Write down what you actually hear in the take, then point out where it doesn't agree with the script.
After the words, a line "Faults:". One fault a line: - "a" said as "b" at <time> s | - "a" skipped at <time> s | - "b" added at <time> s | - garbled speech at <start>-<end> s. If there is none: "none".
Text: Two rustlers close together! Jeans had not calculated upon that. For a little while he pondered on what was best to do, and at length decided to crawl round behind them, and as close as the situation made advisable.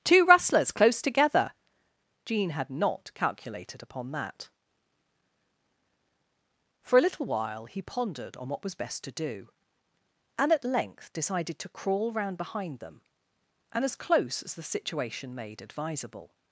Two rustlers close together! Jean had not calculated upon that. For a little while he pondered on what was best to do, and at length decided to crawl round behind them, and as close as the situation made advisable.
Faults:
- "Jeans" said as "Jean" at 2.3 s